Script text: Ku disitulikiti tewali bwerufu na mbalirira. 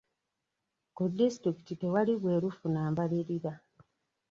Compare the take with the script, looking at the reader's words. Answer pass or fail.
pass